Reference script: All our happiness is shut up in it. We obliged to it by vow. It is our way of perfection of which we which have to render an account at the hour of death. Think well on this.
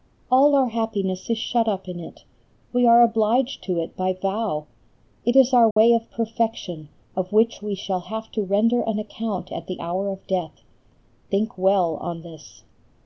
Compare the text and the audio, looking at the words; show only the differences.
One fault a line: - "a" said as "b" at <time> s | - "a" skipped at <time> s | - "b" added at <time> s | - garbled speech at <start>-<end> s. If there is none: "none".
- "are" added at 2.9 s
- "which" said as "shall" at 7.7 s